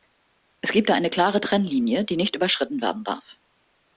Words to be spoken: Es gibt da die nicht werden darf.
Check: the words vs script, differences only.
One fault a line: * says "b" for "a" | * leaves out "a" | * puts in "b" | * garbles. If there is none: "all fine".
* puts in "eine klare Trennlinie"
* puts in "überschritten"